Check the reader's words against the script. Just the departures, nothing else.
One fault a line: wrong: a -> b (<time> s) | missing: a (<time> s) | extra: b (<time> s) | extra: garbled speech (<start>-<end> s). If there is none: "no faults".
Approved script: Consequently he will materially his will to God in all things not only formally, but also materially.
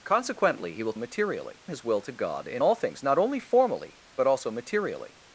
no faults